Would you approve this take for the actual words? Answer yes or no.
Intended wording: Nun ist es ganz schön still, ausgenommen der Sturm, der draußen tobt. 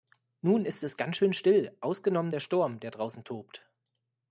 yes